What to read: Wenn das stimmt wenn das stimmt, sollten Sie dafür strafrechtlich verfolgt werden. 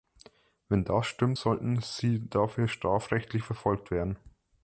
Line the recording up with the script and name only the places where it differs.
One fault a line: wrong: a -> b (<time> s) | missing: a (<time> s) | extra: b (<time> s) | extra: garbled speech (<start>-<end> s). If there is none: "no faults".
missing: wenn das stimmt (1.4 s)